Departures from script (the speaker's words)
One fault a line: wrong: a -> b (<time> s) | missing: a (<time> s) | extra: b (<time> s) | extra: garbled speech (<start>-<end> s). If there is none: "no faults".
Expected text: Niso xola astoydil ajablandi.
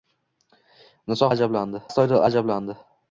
wrong: xola -> ajablandi (1.3 s)